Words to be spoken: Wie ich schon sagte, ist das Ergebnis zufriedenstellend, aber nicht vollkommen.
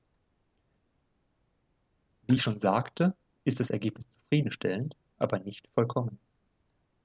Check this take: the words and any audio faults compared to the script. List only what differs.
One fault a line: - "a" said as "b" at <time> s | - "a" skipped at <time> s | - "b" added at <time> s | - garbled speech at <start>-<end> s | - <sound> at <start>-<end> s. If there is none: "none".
none